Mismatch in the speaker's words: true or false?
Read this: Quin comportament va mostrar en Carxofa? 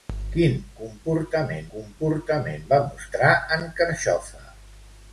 true